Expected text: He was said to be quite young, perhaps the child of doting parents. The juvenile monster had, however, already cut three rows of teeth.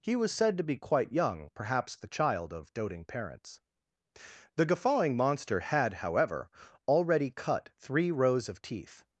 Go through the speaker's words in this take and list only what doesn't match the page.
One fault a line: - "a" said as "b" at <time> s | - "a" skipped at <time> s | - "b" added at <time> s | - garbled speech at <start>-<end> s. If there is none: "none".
- "juvenile" said as "guffawing" at 4.7 s